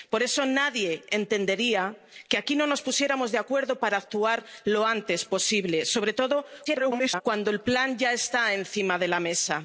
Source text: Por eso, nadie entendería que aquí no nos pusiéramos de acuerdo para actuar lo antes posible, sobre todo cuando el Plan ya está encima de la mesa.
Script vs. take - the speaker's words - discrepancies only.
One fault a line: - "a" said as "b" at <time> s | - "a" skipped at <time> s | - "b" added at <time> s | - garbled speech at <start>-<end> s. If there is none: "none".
- garbled speech at 6.7-7.2 s